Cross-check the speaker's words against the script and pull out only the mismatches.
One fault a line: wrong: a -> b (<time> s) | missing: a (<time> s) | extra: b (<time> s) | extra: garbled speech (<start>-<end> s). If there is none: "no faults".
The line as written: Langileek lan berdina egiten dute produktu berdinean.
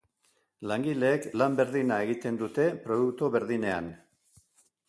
no faults